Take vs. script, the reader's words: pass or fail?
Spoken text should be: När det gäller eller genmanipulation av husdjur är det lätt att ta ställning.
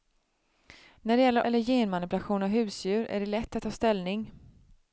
pass